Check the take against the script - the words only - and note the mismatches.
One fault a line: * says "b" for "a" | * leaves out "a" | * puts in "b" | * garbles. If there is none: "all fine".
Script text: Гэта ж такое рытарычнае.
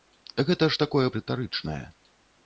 all fine